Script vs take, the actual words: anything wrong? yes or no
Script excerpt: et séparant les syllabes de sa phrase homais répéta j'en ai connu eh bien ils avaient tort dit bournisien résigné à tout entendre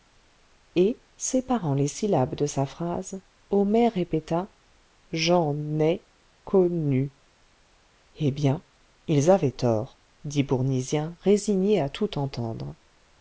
no